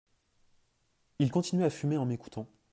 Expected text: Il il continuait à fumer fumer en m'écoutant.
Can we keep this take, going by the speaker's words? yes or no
no